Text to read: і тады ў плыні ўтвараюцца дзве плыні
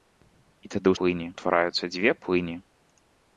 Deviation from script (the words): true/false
false